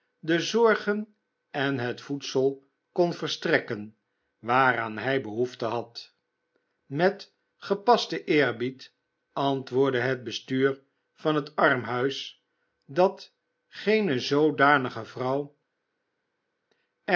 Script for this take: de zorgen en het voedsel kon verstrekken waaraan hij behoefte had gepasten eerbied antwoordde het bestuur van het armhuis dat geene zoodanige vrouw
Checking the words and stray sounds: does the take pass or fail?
fail